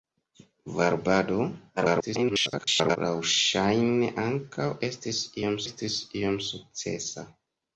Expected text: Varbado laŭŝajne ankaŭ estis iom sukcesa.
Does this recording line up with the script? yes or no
no